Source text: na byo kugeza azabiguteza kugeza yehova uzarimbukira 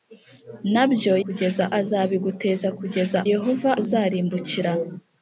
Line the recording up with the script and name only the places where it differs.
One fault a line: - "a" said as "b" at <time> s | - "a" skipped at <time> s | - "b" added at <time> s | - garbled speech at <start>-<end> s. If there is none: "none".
none